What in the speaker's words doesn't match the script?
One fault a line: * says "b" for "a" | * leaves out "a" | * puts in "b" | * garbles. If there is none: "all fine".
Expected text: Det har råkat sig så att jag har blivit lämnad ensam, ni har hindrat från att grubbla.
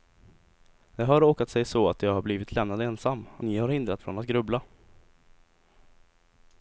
all fine